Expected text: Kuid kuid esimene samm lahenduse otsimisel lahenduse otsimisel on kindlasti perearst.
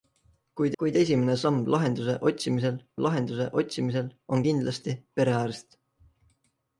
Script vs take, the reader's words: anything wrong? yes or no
no